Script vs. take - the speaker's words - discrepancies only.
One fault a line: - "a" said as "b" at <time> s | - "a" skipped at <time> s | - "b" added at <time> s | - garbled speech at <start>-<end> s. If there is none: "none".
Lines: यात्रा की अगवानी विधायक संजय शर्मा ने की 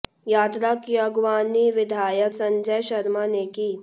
none